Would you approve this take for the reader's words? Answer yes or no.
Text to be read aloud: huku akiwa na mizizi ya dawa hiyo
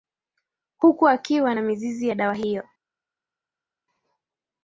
yes